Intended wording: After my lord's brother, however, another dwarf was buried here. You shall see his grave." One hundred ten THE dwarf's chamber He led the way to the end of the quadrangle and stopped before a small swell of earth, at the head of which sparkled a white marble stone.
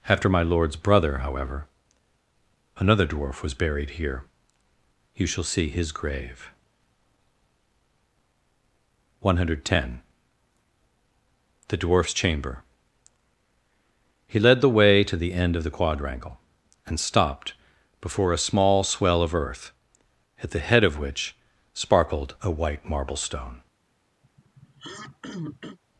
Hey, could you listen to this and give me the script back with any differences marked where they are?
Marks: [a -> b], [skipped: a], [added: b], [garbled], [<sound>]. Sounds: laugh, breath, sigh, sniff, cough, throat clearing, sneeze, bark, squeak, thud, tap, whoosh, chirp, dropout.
After my lord's brother, however, another dwarf was buried here. You shall see his grave." One hundred ten THE dwarf's chamber He led the way to the end of the quadrangle and stopped before a small swell of earth, at the head of which sparkled a white marble stone. [throat clearing]